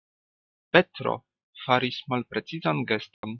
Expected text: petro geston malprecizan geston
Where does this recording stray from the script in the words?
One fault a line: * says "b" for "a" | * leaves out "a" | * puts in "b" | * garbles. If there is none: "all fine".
* says "faris" for "geston"